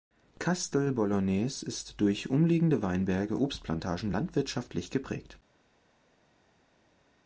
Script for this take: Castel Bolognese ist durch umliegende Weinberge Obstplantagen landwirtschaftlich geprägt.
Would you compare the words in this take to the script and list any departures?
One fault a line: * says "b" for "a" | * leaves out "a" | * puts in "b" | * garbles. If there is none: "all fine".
all fine